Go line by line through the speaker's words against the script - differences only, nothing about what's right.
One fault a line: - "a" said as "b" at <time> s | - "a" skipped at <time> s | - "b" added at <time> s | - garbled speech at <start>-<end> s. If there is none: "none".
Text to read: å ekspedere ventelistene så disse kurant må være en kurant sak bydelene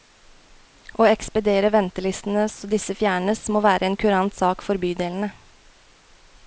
- "kurant" said as "fjernes" at 3.0 s
- "for" added at 4.7 s